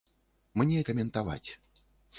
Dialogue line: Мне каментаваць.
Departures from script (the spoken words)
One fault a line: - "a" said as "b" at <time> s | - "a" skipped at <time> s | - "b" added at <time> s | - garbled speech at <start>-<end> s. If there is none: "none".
none